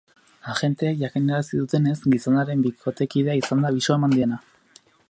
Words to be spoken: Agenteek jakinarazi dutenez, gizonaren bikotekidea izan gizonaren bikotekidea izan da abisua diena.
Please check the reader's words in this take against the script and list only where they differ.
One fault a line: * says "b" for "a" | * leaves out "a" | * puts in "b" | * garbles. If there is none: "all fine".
* leaves out "gizonaren bikotekidea izan"
* puts in "eman"